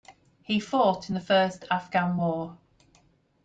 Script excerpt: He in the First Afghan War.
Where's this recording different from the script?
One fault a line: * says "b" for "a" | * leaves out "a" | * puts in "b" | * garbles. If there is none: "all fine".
* puts in "fought"